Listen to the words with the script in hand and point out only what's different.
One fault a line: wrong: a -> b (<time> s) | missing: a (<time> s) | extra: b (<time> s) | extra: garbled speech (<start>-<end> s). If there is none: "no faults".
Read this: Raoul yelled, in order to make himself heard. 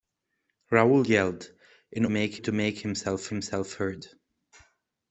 wrong: order -> make (2.1 s)
extra: himself (3.3 s)